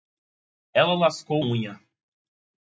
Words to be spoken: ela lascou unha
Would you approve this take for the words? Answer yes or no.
yes